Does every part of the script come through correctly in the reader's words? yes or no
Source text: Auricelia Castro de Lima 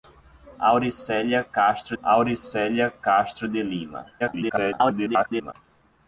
no